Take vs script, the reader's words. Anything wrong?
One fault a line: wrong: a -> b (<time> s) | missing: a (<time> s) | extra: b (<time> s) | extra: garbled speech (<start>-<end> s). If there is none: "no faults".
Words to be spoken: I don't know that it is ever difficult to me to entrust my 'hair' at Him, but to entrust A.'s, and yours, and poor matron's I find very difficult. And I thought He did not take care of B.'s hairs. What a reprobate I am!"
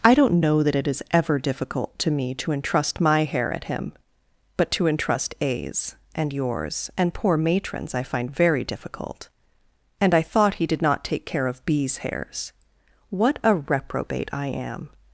no faults